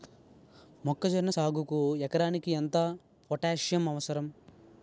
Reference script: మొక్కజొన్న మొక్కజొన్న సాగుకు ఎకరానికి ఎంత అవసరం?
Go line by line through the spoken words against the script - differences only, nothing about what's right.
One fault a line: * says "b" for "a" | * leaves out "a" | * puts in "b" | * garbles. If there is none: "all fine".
* leaves out "మొక్కజొన్న"
* puts in "పోటాస్సియం"